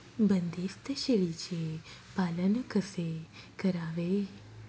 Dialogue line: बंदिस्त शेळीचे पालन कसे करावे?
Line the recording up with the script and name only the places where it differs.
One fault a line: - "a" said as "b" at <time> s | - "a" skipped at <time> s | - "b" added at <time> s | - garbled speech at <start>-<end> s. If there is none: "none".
none